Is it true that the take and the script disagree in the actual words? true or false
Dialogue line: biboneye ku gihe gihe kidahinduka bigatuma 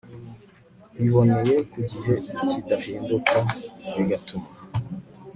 true